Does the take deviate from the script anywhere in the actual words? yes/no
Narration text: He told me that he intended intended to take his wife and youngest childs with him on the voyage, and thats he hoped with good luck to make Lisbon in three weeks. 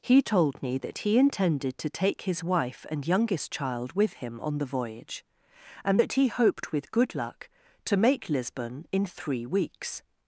yes